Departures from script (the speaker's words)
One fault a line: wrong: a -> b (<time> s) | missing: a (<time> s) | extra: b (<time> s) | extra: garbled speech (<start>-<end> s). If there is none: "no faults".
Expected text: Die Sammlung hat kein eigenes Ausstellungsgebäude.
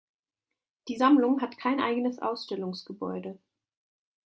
no faults